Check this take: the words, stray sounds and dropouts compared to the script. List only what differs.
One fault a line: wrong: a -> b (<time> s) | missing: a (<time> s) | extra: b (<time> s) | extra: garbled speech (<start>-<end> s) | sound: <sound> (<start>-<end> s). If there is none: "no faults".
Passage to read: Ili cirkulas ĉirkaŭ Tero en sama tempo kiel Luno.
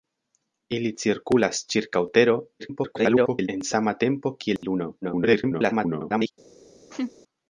extra: garbled speech (2.6-3.5 s)
sound: dropout (4.6-4.6 s)
extra: garbled speech (5.0-6.3 s)
sound: laugh (6.9-7.1 s)